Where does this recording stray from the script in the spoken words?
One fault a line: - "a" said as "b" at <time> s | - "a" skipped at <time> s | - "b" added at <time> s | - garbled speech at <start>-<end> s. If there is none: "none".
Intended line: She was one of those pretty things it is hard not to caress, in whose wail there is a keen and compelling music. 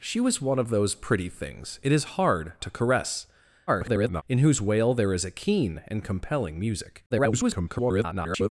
- "not" skipped at 2.5 s
- garbled speech at 3.7-4.2 s
- garbled speech at 7.1-8.5 s